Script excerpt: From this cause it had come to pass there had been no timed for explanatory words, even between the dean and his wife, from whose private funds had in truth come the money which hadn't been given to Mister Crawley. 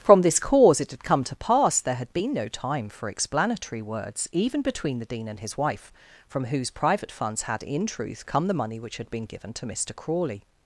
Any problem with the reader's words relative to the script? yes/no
yes